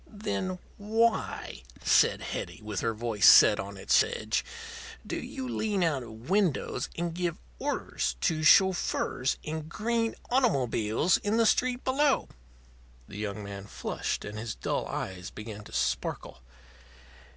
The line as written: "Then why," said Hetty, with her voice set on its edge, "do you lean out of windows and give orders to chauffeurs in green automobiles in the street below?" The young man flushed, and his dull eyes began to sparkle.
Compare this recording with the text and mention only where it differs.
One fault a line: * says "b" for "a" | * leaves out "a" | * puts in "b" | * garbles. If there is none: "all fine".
all fine